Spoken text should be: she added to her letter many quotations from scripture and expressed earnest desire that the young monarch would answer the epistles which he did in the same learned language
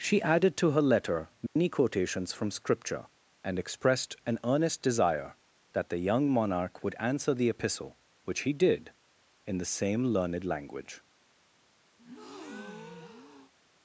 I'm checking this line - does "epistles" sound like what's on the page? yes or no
no